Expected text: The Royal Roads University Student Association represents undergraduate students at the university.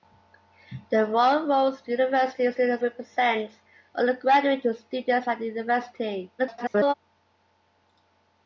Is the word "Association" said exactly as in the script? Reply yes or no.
no